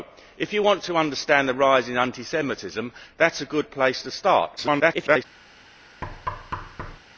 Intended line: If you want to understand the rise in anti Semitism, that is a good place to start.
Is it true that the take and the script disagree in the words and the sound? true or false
true